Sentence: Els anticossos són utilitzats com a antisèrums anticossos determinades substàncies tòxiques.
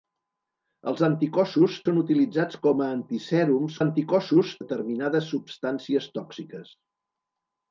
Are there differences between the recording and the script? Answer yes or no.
no